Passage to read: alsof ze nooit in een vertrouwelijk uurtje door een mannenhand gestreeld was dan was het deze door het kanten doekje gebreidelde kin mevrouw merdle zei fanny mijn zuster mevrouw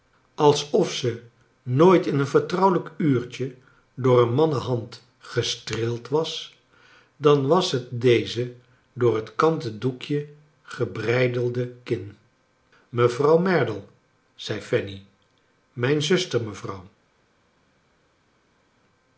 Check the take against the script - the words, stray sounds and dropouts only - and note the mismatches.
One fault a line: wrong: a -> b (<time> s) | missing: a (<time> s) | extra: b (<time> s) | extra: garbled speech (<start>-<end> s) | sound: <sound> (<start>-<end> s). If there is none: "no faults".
no faults